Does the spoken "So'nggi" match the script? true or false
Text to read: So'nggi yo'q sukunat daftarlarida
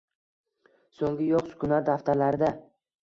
true